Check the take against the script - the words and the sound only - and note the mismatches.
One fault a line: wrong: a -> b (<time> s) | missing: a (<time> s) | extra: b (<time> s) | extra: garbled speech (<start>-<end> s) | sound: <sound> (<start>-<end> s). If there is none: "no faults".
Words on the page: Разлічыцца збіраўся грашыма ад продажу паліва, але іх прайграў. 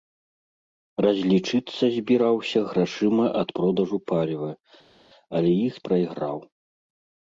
no faults